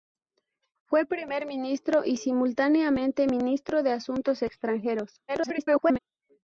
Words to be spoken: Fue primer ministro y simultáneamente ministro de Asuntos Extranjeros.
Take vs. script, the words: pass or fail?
fail